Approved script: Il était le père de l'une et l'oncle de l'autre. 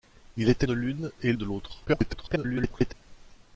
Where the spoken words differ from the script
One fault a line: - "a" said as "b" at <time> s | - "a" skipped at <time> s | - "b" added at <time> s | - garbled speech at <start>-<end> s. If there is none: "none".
- "le père" skipped at 0.7 s
- "l'oncle" skipped at 1.3 s
- garbled speech at 1.9-2.9 s